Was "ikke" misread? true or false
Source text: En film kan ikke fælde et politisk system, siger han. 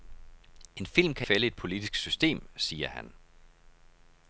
true